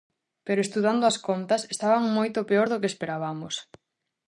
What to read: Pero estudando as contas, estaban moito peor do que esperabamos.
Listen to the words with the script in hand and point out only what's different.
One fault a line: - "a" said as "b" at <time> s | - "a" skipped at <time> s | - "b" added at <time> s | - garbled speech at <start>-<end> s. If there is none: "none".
none